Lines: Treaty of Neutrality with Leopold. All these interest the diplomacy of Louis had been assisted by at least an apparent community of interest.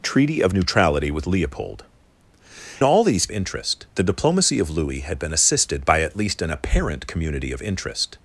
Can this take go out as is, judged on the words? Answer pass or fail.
pass